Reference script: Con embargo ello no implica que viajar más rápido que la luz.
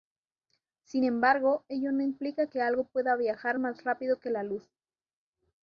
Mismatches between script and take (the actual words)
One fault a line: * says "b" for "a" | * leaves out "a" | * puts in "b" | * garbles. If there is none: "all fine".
* says "Sin" for "Con"
* puts in "algo pueda"